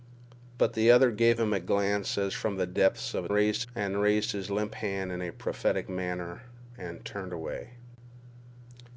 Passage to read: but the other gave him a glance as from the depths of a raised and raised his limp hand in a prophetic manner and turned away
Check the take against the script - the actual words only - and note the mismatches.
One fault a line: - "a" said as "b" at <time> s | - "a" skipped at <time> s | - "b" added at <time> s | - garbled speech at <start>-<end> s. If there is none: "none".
none